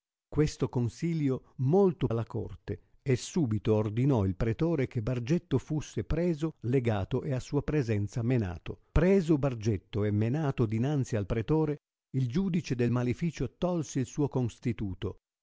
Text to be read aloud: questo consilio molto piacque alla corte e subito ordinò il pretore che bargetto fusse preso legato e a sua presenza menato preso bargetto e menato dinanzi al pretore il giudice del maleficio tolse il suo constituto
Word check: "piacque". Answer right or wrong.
wrong